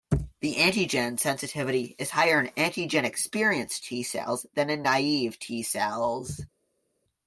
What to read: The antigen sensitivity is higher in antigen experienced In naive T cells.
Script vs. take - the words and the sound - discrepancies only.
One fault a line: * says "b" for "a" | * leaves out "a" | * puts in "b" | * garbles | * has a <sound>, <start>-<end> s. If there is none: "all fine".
* puts in "T cells than"